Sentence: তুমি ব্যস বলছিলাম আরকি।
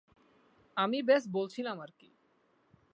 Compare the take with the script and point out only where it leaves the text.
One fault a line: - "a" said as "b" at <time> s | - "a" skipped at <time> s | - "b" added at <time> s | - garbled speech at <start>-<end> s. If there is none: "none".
- "তুমি" said as "আমি" at 0.8 s